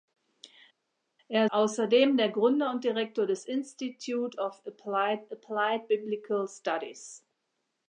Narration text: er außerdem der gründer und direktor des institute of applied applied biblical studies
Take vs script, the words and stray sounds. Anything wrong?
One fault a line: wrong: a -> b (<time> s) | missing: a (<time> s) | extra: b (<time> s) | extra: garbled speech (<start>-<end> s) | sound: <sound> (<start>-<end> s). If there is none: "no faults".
no faults